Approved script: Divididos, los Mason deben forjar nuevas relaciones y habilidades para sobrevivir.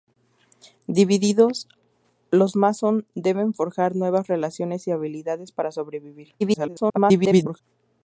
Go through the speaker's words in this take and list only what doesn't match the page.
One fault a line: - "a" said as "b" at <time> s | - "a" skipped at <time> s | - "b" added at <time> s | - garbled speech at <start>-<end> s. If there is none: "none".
- garbled speech at 6.4-7.6 s